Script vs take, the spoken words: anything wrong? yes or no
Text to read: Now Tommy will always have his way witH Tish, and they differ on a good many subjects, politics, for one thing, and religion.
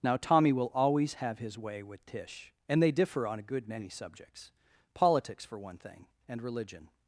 no